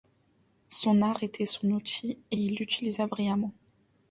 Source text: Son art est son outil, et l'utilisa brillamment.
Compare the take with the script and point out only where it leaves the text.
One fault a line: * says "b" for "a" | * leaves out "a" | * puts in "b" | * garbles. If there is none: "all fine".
* says "était" for "est"
* puts in "il"